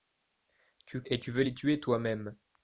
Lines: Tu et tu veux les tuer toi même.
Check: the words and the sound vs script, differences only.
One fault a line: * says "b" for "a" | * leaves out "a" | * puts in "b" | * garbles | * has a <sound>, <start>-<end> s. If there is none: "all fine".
all fine